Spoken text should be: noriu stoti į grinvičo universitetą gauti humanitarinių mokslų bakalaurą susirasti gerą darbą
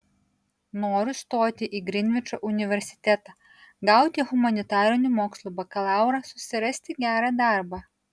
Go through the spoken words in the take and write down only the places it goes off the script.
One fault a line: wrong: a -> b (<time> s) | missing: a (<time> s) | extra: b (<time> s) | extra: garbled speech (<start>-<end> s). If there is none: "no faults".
no faults